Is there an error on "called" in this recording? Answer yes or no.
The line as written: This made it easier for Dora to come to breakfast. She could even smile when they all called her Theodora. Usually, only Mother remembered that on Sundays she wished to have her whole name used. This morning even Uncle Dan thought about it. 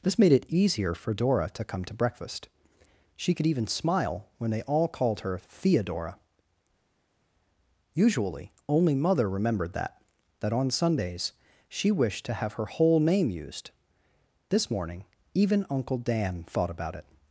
no